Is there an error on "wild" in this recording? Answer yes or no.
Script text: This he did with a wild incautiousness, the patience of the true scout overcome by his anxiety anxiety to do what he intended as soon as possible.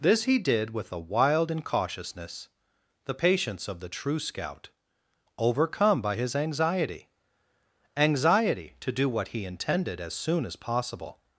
no